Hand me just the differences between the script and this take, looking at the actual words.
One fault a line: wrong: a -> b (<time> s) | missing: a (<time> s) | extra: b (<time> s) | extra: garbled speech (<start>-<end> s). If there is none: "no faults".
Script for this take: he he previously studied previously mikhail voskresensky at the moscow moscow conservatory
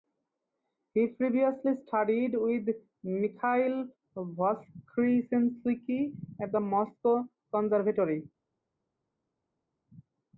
missing: he (1.1 s)
wrong: previously -> with (2.3 s)
missing: moscow (7.3 s)